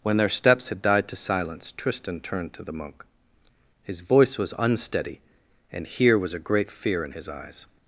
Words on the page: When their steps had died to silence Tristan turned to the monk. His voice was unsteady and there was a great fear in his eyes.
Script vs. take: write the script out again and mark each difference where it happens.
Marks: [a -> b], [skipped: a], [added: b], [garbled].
When their steps had died to silence Tristan turned to the monk. His voice was unsteady and [there -> here] was a great fear in his eyes.